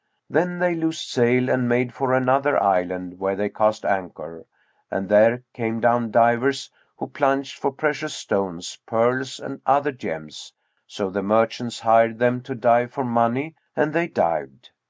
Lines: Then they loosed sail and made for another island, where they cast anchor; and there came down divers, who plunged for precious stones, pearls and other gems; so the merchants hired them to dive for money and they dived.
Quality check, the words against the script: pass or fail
pass